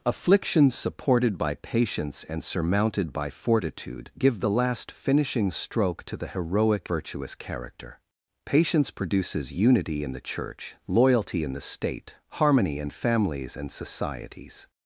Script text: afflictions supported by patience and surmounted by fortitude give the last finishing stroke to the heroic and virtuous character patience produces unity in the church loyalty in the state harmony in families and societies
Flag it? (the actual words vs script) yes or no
yes